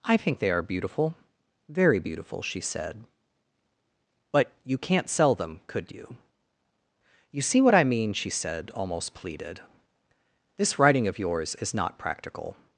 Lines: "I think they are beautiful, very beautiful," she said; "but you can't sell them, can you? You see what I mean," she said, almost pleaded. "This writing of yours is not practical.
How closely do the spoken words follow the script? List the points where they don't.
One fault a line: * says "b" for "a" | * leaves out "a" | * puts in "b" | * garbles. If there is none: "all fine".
* says "could" for "can"